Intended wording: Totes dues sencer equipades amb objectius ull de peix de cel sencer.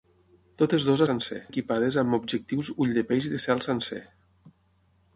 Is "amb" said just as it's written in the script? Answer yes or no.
yes